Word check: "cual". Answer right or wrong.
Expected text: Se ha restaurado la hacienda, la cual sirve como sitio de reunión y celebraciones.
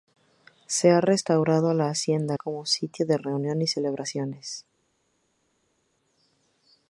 wrong